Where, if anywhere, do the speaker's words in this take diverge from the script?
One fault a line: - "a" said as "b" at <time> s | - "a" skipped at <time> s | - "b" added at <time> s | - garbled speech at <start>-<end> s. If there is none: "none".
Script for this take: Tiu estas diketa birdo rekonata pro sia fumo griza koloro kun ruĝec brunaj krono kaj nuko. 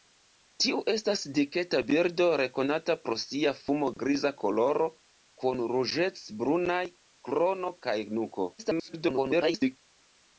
- garbled speech at 8.6-9.8 s